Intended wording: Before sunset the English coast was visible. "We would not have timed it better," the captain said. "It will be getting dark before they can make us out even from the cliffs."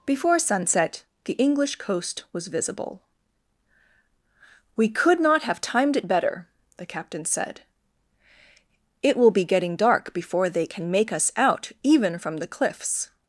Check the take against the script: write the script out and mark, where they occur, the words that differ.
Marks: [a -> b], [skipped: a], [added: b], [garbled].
Before sunset the English coast was visible. "We [would -> could] not have timed it better," the captain said. "It will be getting dark before they can make us out even from the cliffs."